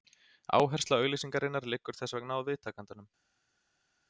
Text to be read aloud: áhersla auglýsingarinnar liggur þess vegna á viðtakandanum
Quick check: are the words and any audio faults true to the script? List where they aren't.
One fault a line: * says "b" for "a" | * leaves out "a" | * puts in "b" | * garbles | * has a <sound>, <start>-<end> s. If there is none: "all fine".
all fine